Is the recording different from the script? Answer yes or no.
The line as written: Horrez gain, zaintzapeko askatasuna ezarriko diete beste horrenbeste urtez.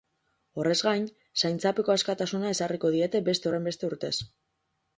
no